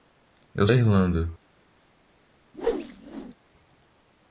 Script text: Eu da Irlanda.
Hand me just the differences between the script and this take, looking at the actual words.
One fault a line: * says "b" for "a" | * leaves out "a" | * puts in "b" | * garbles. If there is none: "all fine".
all fine